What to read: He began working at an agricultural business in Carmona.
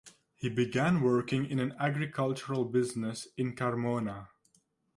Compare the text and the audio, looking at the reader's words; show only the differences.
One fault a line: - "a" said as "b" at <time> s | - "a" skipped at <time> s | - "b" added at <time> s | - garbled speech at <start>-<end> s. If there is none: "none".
- "at" said as "in" at 1.4 s